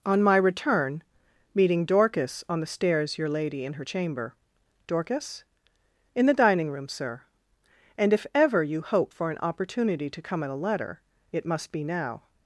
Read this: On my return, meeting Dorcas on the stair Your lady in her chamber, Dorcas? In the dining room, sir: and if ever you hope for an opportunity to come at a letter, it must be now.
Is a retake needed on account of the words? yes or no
yes